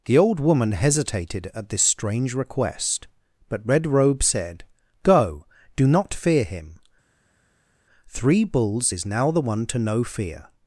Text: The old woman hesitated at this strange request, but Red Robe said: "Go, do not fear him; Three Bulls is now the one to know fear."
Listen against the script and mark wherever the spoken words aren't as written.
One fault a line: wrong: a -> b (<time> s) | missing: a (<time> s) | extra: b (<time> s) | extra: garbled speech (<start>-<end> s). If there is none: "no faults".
no faults